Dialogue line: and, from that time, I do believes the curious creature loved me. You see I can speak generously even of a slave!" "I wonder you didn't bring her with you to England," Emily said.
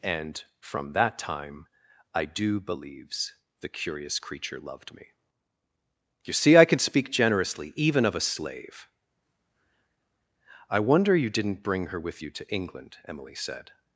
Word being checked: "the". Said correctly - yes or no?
yes